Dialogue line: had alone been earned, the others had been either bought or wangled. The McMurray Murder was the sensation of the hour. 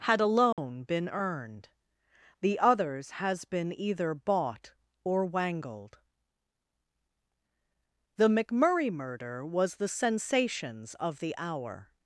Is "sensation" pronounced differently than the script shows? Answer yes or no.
yes